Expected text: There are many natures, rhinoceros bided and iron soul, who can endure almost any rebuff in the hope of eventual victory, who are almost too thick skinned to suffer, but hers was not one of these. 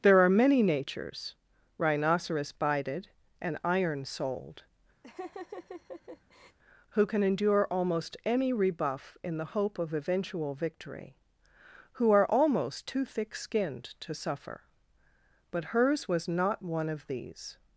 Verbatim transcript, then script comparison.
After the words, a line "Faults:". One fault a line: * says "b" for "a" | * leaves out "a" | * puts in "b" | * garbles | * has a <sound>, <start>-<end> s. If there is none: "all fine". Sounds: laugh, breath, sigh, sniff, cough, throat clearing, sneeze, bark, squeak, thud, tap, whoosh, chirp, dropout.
There are many natures, rhinoceros bided and iron souled, who can endure almost any rebuff in the hope of eventual victory, who are almost too thick skinned to suffer, but hers was not one of these.
Faults:
* says "souled" for "soul"
* has a laugh, 5.0-6.6 s